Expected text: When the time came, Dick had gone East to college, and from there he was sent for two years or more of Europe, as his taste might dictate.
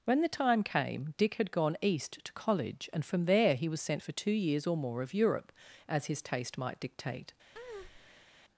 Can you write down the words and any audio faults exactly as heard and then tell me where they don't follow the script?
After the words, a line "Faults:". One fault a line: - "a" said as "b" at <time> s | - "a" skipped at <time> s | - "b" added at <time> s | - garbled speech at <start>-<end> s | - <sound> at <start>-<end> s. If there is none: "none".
When the time came, Dick had gone East to college, and from there he was sent for two years or more of Europe, as his taste might dictate.
Faults:
- breath at 7.5-8.3 s